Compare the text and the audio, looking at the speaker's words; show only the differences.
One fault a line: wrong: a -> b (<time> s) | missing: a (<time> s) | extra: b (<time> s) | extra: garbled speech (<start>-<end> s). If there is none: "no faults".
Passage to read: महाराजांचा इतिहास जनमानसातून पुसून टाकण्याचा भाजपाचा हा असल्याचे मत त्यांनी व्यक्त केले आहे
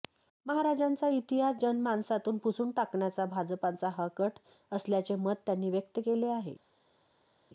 extra: कट (4.2 s)